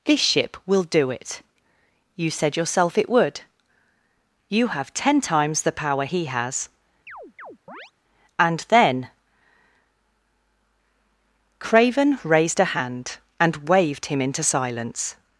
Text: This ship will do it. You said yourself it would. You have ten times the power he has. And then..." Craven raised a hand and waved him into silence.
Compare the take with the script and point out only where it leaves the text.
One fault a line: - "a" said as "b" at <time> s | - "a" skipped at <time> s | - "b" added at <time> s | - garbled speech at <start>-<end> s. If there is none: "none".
none